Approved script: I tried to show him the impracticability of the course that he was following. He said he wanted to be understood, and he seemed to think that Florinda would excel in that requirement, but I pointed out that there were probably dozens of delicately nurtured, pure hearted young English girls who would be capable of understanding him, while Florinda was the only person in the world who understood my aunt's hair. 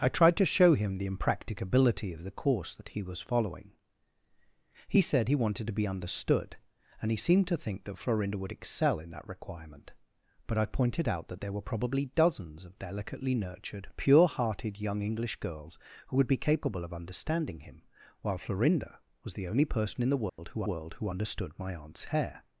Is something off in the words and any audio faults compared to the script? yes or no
yes